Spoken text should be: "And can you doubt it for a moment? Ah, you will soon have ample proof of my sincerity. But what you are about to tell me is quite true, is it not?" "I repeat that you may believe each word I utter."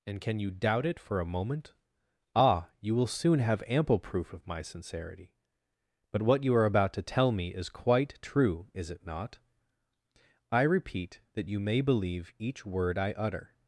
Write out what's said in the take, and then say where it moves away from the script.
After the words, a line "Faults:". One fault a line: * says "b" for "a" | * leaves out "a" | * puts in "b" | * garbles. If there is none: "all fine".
"And can you doubt it for a moment? Ah, you will soon have ample proof of my sincerity. But what you are about to tell me is quite true, is it not?" "I repeat that you may believe each word I utter."
Faults:
all fine